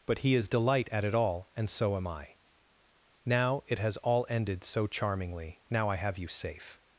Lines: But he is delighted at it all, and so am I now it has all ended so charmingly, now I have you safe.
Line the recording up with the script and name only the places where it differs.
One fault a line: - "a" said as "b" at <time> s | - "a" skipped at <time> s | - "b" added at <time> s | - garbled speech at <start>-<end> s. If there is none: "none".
- "delighted" said as "delight" at 0.5 s